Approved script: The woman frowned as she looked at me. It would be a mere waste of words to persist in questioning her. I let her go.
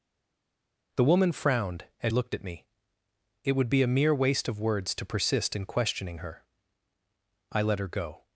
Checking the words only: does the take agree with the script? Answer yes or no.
no